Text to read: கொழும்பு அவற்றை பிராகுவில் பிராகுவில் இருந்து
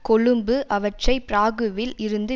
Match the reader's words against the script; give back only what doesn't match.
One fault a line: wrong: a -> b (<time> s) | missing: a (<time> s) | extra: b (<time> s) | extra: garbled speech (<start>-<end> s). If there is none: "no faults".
missing: பிராகுவில் (1.9 s)